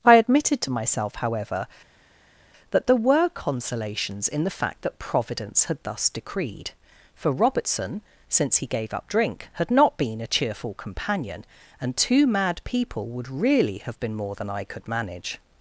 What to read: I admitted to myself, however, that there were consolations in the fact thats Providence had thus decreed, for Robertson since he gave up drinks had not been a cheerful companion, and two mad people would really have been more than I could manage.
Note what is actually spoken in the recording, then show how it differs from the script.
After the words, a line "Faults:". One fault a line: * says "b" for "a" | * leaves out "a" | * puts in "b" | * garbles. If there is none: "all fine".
I admitted to myself, however, that there were consolations in the fact that Providence had thus decreed, for Robertson since he gave up drink had not been a cheerful companion, and two mad people would really have been more than I could manage.
Faults:
* says "that" for "thats"
* says "drink" for "drinks"